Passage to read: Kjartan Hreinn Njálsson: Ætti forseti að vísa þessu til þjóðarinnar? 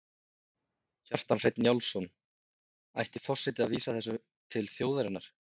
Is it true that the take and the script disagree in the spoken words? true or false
false